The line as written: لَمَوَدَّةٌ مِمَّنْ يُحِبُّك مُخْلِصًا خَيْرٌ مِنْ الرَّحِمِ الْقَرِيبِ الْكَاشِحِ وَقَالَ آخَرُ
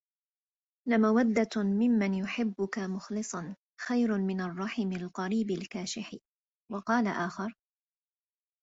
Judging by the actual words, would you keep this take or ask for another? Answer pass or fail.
pass